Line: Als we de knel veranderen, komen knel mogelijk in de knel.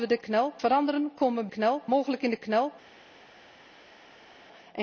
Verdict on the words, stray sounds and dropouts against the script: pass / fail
pass